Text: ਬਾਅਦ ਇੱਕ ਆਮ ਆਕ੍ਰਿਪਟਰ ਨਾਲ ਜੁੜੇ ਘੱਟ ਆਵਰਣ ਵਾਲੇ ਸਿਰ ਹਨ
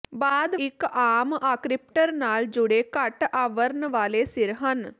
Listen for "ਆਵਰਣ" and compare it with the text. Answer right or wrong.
right